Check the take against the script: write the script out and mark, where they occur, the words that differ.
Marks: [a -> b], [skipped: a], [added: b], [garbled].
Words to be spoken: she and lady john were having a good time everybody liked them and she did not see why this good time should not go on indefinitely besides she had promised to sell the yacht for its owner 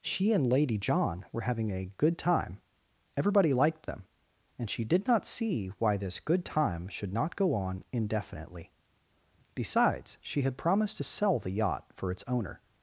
she and lady john were having a good time everybody liked them and she did not see why this good time should not go on indefinitely besides she had promised to sell the yacht for its owner